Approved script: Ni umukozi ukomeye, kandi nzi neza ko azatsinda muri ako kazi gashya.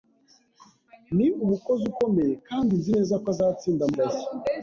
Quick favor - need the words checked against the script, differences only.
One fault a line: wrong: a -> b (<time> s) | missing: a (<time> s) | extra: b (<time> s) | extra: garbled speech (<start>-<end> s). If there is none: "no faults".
missing: muri ako kazi (3.8 s)